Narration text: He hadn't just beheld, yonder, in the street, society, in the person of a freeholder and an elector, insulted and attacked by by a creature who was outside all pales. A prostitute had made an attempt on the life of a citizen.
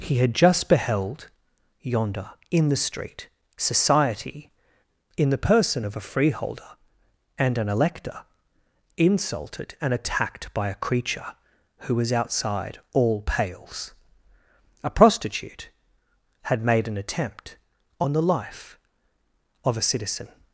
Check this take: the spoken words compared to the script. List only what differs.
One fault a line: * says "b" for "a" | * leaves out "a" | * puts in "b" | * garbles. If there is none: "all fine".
* says "had" for "hadn't"
* leaves out "by"